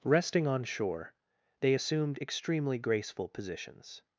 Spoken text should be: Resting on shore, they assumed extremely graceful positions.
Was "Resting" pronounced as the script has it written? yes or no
yes